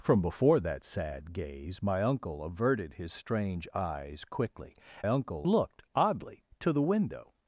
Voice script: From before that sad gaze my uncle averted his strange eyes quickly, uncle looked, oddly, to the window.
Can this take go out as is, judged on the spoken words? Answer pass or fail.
pass